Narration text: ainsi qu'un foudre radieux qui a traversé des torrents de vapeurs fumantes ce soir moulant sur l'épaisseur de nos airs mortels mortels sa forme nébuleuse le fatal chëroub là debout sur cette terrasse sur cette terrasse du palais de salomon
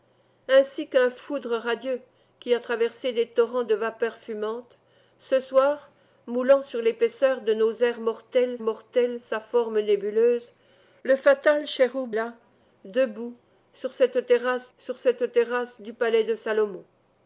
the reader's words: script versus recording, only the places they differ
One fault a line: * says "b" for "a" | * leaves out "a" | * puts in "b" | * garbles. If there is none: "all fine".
all fine